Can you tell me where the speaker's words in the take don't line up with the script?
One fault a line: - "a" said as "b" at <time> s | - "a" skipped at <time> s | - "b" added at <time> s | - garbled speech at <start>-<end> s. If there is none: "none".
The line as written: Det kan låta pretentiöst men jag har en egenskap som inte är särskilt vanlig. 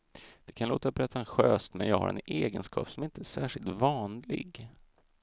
none